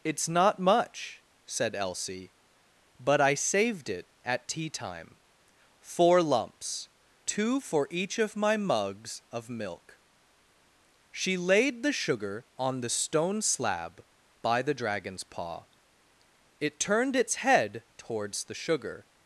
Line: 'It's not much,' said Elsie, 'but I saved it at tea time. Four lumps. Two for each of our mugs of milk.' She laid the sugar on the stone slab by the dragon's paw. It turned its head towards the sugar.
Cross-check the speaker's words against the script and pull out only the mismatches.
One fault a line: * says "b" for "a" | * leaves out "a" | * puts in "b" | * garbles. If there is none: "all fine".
* says "my" for "our"